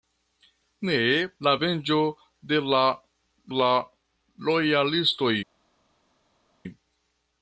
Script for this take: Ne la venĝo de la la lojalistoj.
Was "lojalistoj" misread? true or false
false